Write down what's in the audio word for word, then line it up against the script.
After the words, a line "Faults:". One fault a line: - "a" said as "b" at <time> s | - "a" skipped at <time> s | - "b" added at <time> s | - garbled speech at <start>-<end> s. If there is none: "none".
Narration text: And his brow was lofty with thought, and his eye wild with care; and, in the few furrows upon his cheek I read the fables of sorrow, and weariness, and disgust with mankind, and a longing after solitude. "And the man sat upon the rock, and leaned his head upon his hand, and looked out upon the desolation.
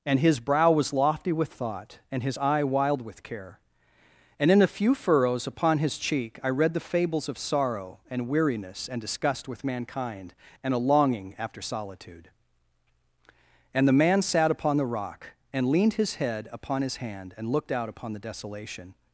And his brow was lofty with thought, and his eye wild with care; and, in a few furrows upon his cheek I read the fables of sorrow, and weariness, and disgust with mankind, and a longing after solitude. "And the man sat upon the rock, and leaned his head upon his hand, and looked out upon the desolation.
Faults:
- "the" said as "a" at 4.6 s